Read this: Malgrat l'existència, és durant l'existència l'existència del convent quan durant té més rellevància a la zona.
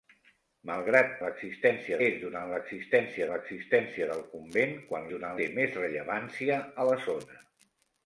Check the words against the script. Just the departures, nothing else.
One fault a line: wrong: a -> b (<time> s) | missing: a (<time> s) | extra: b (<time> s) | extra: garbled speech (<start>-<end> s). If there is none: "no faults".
no faults